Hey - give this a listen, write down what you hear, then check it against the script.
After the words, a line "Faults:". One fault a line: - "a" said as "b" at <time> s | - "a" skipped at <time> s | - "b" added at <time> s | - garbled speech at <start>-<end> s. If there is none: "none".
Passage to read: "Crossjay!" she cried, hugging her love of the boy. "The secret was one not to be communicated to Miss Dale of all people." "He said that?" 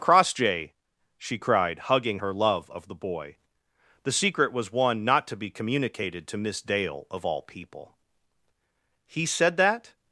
"Crossjay!" she cried, hugging her love of the boy. "The secret was one not to be communicated to Miss Dale of all people." "He said that?"
Faults:
none